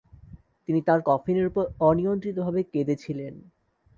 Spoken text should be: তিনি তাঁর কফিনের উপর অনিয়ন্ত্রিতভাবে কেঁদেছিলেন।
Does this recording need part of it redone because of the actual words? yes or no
no